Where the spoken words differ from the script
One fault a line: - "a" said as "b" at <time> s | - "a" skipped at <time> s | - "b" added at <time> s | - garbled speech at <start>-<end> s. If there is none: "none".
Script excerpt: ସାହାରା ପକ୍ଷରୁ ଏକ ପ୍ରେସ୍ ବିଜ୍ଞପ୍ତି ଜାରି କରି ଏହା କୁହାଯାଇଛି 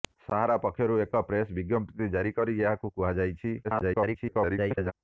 - garbled speech at 3.6-4.9 s